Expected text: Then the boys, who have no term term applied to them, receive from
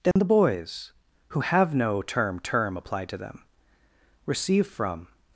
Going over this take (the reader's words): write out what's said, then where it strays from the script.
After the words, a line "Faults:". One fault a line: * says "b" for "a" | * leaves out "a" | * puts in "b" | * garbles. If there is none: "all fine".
Then the boys, who have no term term applied to them, receive from
Faults:
all fine